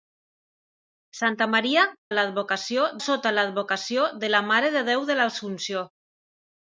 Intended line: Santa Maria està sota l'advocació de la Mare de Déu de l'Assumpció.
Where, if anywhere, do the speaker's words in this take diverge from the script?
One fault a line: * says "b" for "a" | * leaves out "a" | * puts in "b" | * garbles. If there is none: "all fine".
* says "l'advocació" for "està"